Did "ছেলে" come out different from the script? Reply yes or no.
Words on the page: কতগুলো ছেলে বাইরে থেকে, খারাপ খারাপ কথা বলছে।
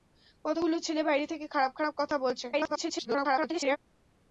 no